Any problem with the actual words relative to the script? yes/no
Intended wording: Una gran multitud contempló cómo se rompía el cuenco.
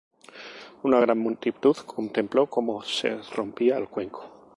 no